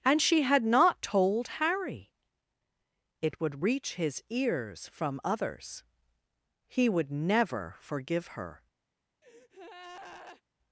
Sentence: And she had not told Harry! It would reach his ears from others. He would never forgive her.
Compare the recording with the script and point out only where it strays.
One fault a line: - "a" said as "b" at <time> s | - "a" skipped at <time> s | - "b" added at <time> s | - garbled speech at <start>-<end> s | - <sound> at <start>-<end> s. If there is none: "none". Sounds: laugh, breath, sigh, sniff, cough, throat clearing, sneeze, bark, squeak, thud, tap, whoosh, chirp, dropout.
- breath at 9.2-10.4 s